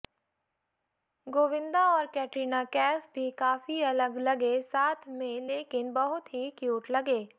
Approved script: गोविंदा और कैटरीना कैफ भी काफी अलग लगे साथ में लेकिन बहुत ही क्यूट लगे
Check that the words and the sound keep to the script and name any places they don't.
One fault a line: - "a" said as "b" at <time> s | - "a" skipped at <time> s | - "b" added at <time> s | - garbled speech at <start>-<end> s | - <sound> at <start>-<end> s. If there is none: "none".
none